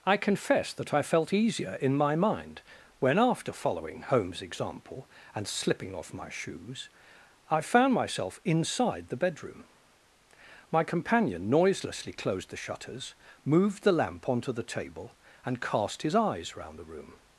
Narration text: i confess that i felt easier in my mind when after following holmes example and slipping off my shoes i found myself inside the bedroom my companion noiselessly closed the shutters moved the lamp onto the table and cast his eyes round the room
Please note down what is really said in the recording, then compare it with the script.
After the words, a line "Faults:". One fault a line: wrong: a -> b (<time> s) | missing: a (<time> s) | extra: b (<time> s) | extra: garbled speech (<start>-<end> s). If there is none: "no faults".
i confess that i felt easier in my mind when after following holmes example and slipping off my shoes i found myself inside the bedroom my companion noiselessly closed the shutters moved the lamp onto the table and cast his eyes round the room
Faults:
no faults